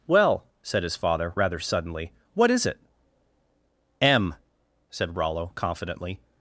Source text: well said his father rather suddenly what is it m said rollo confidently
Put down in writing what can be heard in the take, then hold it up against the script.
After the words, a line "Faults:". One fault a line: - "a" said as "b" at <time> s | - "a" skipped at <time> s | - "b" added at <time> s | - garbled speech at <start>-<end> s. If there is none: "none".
well said his father rather suddenly what is it m said rollo confidently
Faults:
none